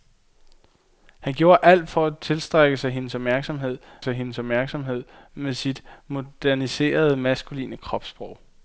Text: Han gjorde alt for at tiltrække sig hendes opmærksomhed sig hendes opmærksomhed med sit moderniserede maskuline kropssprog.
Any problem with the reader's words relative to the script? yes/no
no